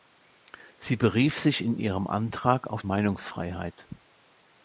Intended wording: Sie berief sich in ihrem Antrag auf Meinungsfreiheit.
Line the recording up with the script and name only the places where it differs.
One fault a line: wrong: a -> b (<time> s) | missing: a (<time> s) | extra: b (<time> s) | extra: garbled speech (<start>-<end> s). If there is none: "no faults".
no faults